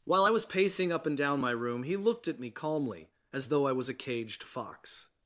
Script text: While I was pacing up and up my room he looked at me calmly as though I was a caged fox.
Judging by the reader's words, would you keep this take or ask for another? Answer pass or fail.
fail